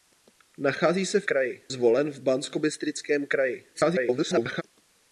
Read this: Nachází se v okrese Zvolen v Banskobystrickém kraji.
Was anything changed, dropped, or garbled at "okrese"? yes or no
yes